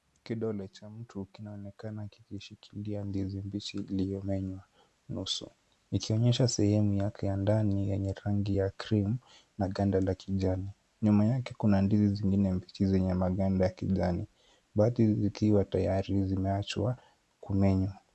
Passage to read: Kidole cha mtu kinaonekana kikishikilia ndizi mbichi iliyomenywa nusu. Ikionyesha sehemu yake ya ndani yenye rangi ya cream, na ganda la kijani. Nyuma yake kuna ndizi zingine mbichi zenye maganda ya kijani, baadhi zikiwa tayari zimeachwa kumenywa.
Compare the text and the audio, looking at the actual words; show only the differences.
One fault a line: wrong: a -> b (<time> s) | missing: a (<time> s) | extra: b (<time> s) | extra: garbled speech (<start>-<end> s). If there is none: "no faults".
no faults